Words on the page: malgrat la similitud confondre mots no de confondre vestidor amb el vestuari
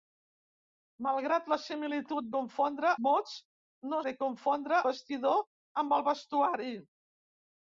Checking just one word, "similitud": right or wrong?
right